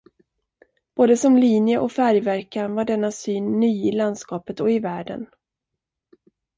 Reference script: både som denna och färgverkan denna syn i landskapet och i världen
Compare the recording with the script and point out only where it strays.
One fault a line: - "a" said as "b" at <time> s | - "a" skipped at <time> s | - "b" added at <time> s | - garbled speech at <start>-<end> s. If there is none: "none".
- "denna" said as "linje" at 1.4 s
- "var" added at 2.8 s
- "ny" added at 3.6 s